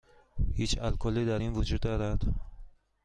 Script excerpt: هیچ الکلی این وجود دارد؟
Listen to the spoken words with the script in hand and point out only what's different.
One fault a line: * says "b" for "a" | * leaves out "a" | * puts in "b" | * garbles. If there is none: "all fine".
* puts in "در"